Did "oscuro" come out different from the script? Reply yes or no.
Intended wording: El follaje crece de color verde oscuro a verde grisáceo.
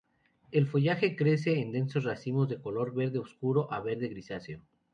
no